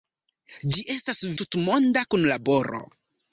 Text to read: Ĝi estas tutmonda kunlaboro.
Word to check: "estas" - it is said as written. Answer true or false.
true